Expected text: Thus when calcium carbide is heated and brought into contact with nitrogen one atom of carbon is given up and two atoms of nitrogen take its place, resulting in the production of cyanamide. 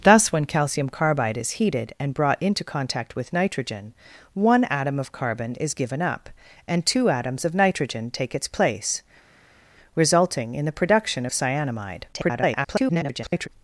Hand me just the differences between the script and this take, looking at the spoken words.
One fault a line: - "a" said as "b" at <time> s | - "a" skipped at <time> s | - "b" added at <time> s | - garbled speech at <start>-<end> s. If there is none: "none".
- garbled speech at 12.1-13.5 s